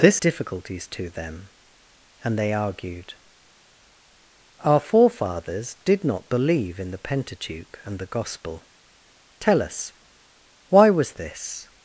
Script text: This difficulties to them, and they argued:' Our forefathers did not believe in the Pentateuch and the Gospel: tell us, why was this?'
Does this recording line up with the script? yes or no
yes